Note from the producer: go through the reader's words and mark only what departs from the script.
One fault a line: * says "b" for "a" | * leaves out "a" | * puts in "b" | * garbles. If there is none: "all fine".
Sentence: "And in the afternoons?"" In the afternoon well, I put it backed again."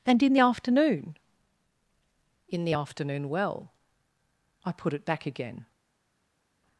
* says "afternoon" for "afternoons"
* says "back" for "backed"